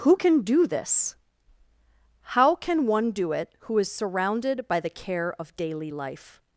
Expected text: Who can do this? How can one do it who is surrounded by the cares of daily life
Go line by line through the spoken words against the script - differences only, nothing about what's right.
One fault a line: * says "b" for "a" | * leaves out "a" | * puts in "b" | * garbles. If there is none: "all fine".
* says "care" for "cares"